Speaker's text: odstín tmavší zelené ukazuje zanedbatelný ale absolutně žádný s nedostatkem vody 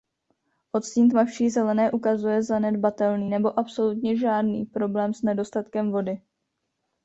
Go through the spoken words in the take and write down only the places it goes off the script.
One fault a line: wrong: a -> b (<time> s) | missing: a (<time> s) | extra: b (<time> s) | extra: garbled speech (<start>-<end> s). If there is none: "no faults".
wrong: ale -> nebo (3.3 s)
extra: problém (4.6 s)